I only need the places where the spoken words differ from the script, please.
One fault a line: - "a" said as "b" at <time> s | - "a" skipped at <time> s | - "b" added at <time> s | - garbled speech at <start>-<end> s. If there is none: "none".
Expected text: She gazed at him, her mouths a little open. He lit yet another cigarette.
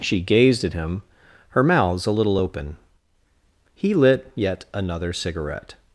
none